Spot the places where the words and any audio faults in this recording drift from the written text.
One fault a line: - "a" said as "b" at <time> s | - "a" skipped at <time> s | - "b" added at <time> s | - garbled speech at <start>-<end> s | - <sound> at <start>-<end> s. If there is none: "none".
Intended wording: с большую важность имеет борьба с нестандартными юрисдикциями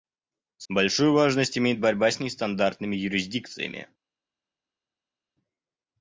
none